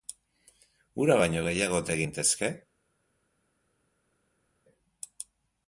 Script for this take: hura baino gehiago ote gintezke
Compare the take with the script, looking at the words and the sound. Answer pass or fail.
pass